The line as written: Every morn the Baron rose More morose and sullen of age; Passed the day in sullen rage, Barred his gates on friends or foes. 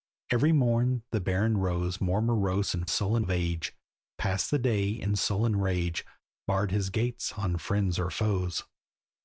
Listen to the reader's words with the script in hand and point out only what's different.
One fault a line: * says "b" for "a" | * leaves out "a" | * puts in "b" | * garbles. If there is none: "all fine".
all fine